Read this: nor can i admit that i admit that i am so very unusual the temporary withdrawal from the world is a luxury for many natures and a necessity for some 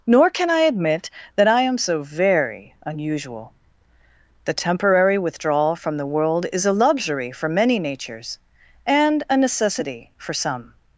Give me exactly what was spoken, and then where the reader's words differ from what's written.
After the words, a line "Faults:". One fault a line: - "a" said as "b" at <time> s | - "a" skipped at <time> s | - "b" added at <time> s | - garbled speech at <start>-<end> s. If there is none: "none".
nor can i admit that i am so very unusual the temporary withdrawal from the world is a luxury for many natures and a necessity for some
Faults:
- "admit that i" skipped at 1.6 s